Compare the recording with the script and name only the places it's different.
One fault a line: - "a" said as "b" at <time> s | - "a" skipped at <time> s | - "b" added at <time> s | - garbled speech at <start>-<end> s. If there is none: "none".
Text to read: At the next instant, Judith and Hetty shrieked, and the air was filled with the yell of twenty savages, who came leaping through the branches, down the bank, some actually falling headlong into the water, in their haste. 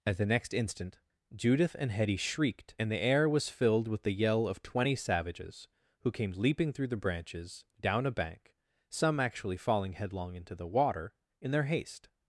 - "the" said as "a" at 8.1 s